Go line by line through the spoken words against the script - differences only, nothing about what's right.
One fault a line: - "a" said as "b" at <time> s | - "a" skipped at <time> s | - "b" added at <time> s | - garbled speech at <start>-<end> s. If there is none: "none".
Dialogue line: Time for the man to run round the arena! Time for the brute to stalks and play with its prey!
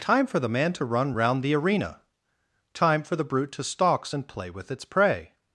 none